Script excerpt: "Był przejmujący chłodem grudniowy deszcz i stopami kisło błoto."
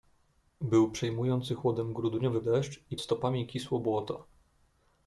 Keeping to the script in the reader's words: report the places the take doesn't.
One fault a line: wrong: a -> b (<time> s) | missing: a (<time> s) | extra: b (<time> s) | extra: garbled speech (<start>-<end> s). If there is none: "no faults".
no faults